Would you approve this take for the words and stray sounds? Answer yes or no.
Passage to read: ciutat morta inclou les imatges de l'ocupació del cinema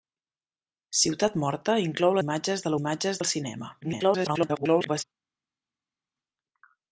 no